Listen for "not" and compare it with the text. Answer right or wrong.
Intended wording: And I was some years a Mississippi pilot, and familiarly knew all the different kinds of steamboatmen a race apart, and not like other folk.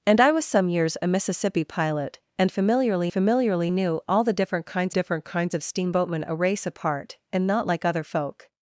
right